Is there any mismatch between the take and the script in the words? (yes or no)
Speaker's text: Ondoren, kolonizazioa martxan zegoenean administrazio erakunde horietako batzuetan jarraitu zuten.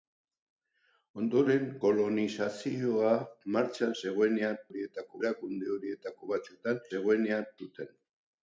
yes